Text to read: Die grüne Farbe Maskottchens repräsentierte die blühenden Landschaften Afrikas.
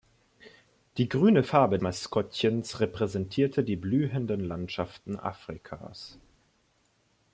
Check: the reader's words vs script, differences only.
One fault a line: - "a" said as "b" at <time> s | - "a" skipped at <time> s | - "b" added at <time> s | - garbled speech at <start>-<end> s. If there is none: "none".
none